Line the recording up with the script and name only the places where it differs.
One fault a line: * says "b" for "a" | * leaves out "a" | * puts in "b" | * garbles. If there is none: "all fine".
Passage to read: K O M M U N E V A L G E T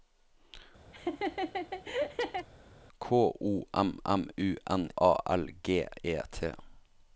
* leaves out "E V"